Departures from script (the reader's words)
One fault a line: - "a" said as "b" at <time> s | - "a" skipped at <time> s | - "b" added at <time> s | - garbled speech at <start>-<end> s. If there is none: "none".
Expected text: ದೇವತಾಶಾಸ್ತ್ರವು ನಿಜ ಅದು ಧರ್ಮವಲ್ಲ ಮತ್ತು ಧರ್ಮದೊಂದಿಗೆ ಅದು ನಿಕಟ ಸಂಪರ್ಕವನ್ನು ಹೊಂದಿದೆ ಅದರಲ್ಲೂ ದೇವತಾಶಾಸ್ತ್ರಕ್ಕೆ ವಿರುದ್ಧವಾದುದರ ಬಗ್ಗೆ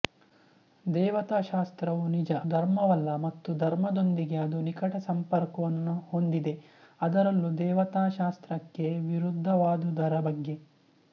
- "ಅದು" skipped at 2.3 s